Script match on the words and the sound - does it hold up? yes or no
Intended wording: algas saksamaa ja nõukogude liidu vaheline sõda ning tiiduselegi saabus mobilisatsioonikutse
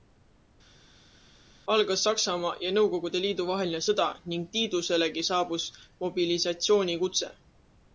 yes